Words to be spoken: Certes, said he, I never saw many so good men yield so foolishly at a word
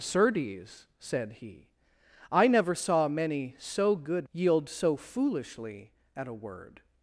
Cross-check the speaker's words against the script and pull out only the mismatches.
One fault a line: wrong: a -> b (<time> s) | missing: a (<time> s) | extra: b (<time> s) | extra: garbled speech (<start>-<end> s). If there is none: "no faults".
missing: men (4.3 s)